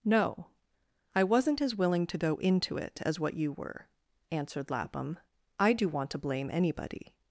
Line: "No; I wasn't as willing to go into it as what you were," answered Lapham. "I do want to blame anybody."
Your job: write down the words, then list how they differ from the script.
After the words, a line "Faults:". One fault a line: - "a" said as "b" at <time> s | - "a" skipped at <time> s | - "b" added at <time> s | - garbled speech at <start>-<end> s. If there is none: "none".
"No; I wasn't as willing to go into it as what you were," answered Lapham. "I do want to blame anybody."
Faults:
none